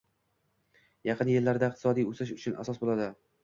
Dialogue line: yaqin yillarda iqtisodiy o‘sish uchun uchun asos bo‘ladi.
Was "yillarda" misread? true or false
false